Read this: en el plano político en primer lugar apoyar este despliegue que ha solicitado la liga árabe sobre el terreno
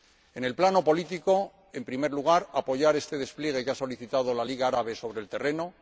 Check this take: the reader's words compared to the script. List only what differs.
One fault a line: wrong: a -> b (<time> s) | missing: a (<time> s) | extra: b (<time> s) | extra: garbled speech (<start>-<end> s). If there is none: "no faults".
no faults